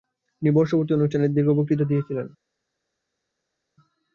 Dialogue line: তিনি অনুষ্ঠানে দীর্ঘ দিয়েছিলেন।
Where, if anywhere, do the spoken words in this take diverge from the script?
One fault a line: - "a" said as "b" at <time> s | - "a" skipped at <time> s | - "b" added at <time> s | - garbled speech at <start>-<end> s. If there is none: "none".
- "বর্ষপূর্তি" added at 0.5 s
- "বক্তৃতা" added at 1.5 s